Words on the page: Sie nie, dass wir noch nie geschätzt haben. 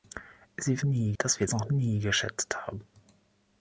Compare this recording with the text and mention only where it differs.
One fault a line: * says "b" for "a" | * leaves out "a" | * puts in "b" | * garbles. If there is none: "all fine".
all fine